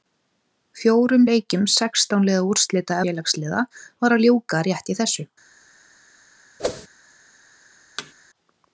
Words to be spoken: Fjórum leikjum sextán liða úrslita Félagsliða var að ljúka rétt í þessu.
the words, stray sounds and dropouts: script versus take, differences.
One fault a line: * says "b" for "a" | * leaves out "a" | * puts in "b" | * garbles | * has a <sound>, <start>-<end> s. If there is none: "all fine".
* has a whoosh, 6.6-6.9 s
* has a thud, 8.0-8.1 s